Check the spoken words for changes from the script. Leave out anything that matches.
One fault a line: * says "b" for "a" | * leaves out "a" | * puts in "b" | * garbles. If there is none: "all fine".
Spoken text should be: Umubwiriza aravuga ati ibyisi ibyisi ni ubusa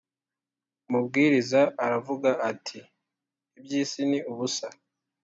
* leaves out "ibyisi"